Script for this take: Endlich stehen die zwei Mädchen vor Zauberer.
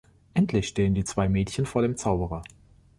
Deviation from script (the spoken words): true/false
true